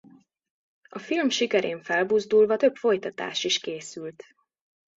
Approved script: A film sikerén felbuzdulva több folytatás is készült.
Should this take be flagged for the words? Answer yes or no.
no